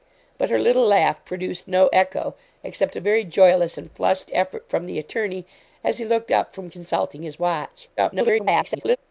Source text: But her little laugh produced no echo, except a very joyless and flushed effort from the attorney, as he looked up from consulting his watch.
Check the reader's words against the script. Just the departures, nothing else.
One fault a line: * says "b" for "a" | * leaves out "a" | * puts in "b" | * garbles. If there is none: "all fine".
* garbles